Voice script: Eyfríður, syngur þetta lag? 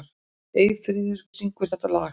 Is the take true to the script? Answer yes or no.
yes